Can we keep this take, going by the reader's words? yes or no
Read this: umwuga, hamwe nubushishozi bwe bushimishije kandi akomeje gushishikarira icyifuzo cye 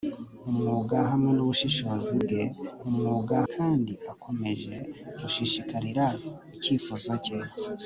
no